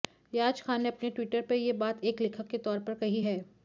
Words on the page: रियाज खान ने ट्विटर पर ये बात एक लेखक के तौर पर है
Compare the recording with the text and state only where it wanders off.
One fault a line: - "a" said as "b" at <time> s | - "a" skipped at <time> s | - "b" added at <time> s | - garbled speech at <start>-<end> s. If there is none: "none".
- "अपने" added at 0.9 s
- "कही" added at 3.0 s